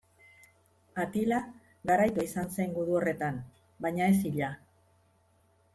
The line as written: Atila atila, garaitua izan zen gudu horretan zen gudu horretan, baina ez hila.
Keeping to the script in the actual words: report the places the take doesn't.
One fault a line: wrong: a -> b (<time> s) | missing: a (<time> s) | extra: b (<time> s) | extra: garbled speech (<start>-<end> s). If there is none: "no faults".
missing: atila (1.4 s)
missing: zen gudu horretan (3.4 s)